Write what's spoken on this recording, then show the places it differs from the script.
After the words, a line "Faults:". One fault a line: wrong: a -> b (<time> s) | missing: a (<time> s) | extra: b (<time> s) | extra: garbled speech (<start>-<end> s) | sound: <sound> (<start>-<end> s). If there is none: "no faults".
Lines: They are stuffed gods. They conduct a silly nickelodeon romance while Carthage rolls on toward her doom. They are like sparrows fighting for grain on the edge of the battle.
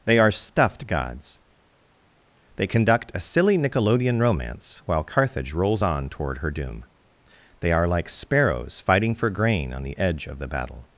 They are stuffed gods. They conduct a silly nickelodeon romance while Carthage rolls on toward her doom. They are like sparrows fighting for grain on the edge of the battle.
Faults:
no faults